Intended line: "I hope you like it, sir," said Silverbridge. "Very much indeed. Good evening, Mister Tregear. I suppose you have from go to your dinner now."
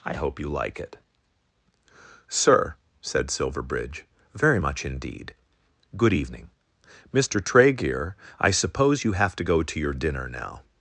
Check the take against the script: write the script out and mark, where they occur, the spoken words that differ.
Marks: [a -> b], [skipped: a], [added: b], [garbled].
"I hope you like it, sir," said Silverbridge. "Very much indeed. Good evening, Mister Tregear. I suppose you have [from -> to] go to your dinner now."